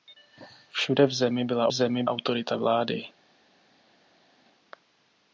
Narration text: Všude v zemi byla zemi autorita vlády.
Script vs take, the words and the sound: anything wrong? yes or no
no